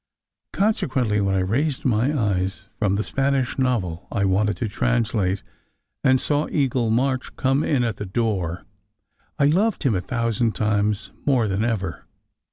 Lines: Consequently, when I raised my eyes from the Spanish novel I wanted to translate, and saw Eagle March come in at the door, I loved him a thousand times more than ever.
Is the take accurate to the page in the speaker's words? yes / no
yes